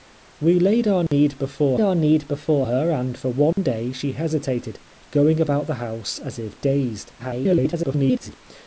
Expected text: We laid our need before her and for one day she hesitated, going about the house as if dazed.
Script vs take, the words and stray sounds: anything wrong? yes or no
yes